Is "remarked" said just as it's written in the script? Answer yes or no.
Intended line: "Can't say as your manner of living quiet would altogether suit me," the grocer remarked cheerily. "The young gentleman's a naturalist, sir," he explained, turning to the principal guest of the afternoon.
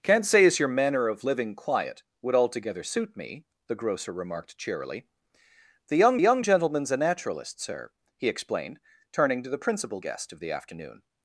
yes